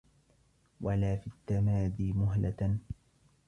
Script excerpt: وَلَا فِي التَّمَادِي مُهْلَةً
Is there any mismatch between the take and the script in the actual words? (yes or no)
no